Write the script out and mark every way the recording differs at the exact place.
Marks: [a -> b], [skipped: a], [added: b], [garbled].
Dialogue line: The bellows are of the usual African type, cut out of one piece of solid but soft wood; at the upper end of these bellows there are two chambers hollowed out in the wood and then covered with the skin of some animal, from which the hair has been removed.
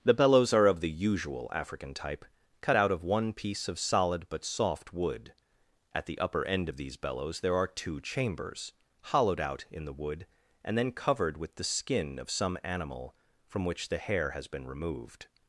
The bellows are of the usual African type, cut out of one piece of solid but soft wood; at the upper end of these bellows there are two chambers hollowed out in the wood and then covered with the skin of some animal, from which the hair has been removed.